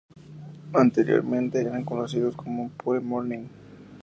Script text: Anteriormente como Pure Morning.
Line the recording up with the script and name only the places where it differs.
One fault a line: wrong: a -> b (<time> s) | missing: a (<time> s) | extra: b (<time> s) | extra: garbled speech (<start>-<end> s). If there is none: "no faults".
extra: eran conocidos (1.6 s)